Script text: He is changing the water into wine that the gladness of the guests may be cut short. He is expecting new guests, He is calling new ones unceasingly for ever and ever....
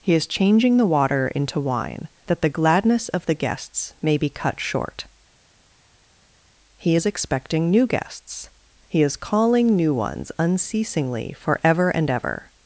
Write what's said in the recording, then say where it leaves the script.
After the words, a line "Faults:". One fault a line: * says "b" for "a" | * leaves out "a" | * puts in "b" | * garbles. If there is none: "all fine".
He is changing the water into wine that the gladness of the guests may be cut short. He is expecting new guests, He is calling new ones unceasingly for ever and ever....
Faults:
all fine